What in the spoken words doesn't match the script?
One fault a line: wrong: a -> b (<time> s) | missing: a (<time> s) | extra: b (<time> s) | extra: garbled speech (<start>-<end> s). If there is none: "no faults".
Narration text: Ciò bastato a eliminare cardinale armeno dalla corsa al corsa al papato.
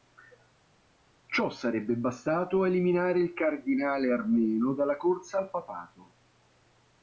extra: sarebbe (1.5 s)
extra: il (3.2 s)
missing: corsa al (5.5 s)